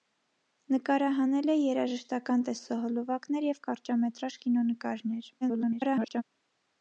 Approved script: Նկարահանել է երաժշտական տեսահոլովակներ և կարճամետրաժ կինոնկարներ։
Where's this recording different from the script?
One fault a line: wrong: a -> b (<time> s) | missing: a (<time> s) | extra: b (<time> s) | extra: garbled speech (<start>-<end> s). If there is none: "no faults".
extra: garbled speech (5.4-6.2 s)